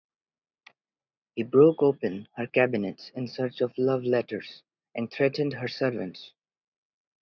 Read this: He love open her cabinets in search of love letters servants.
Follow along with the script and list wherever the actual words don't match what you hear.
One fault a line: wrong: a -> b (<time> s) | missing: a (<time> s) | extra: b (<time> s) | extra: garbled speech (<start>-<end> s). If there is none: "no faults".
wrong: love -> broke (1.4 s)
extra: and threatened her (5.0 s)